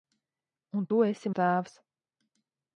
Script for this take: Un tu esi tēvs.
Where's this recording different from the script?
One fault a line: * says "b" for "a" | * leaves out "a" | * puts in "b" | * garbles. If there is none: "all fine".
all fine